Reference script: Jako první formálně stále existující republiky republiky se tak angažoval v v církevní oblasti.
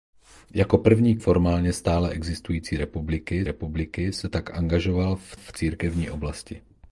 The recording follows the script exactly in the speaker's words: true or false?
true